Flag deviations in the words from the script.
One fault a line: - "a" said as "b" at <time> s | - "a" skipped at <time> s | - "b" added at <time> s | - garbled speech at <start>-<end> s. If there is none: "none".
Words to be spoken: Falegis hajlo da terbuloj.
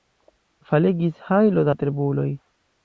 none